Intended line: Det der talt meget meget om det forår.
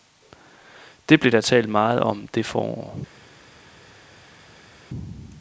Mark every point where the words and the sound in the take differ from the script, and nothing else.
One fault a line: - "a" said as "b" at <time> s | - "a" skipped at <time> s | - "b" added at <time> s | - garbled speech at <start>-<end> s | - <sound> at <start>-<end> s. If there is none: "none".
- "blev" added at 1.2 s
- "meget" skipped at 2.0 s